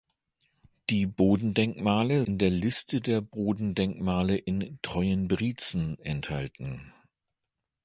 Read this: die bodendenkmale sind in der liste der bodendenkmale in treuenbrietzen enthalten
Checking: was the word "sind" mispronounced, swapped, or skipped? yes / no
yes